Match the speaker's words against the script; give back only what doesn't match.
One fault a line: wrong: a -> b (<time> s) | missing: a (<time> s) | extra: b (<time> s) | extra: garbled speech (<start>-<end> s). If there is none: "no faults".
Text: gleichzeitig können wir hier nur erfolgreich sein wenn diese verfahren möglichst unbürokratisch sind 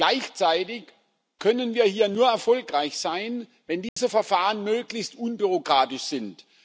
no faults